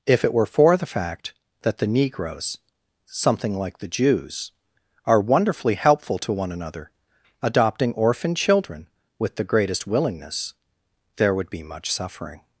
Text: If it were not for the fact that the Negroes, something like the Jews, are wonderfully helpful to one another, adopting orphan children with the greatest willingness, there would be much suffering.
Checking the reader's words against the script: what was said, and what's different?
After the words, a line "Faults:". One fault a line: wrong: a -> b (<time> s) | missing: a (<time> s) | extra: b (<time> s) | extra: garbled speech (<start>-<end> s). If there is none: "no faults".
If it were for the fact that the Negroes, something like the Jews, are wonderfully helpful to one another, adopting orphan children with the greatest willingness, there would be much suffering.
Faults:
missing: not (0.5 s)